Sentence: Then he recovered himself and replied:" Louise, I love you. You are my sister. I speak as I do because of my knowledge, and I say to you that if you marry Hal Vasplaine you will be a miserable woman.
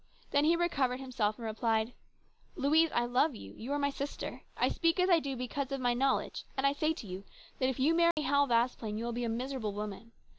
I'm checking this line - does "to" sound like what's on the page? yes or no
yes